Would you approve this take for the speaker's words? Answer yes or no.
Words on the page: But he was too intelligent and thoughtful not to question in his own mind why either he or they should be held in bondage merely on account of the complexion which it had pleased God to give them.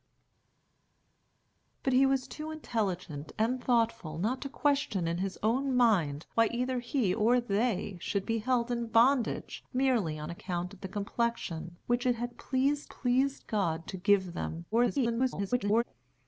no